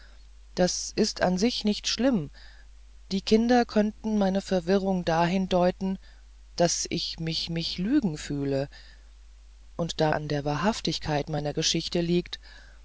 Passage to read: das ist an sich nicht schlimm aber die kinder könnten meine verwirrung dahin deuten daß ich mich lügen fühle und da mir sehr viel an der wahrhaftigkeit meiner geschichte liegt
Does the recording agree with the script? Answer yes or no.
no